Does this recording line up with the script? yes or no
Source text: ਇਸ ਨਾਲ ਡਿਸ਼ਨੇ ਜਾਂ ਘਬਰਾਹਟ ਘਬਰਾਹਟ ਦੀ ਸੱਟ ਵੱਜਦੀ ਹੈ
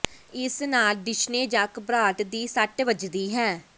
no